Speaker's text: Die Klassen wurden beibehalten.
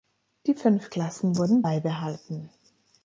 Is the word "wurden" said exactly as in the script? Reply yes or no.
yes